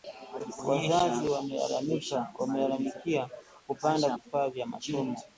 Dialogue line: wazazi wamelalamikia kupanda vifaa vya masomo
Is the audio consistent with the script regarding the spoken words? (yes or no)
yes